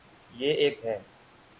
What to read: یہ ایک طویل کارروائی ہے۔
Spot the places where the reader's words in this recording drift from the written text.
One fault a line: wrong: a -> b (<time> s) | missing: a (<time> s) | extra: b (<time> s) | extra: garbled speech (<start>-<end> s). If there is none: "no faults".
missing: طویل کارروائی (0.8 s)